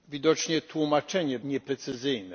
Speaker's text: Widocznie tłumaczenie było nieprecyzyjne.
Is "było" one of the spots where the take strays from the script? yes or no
yes